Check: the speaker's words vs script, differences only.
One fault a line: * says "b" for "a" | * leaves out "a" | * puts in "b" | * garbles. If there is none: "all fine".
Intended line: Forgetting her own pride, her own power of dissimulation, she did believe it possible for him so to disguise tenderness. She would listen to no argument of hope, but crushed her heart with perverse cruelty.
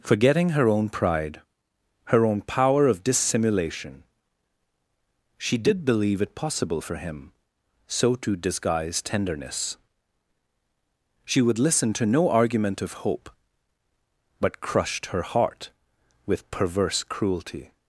all fine